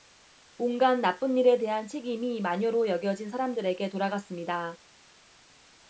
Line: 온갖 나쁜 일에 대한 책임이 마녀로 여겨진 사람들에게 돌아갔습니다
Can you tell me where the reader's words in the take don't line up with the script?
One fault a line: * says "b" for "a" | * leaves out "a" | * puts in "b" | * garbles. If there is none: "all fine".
all fine